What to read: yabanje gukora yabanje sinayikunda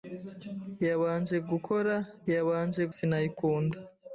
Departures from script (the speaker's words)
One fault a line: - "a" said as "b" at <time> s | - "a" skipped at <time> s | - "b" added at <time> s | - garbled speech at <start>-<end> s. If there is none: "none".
none